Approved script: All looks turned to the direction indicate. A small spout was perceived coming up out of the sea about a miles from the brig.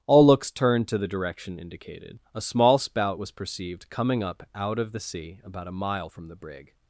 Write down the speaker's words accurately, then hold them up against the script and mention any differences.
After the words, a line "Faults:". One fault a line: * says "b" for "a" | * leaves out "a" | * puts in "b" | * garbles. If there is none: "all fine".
All looks turned to the direction indicated. A small spout was perceived coming up out of the sea about a mile from the brig.
Faults:
* says "indicated" for "indicate"
* says "mile" for "miles"